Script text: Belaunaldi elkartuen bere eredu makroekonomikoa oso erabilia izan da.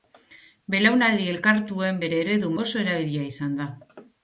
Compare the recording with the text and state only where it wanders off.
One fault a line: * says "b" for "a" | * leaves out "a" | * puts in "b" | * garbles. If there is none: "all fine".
* leaves out "makroekonomikoa"